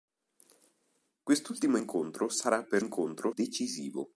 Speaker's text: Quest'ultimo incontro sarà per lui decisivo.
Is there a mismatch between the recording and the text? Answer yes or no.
yes